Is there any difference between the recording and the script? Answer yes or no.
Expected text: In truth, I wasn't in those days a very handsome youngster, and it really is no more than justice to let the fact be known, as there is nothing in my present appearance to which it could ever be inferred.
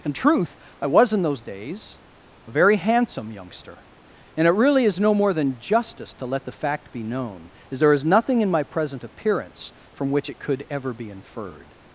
yes